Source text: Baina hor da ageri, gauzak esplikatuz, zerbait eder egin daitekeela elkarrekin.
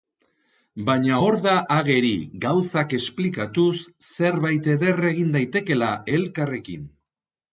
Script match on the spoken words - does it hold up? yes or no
yes